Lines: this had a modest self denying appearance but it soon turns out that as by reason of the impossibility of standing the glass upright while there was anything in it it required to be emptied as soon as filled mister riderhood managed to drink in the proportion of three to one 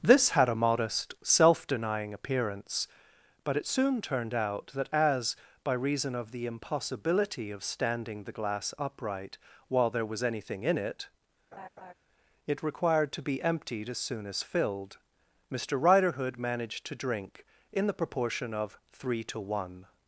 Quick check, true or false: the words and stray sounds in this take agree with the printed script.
false